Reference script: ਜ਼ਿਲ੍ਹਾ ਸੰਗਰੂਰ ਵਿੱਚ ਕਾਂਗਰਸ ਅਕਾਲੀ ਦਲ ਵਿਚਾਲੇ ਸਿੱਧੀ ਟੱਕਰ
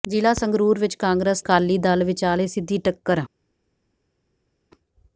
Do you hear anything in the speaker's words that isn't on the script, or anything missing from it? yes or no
no